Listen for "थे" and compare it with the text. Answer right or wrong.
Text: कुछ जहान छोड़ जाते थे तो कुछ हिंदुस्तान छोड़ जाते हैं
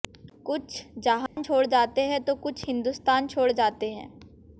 wrong